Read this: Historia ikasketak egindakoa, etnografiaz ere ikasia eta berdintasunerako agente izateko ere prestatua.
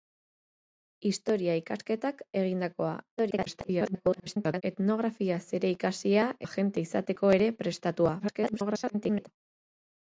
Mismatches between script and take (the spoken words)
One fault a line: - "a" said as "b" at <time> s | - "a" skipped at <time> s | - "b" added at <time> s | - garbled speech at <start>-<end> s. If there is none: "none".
- garbled speech at 3.2-4.6 s
- "eta berdintasunerako" skipped at 6.2 s
- garbled speech at 8.2-9.3 s